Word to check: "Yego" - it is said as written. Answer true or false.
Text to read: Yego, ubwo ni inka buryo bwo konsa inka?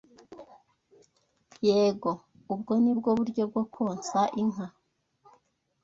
true